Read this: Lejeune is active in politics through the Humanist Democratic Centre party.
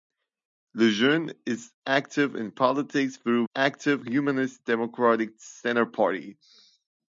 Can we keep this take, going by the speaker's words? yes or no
no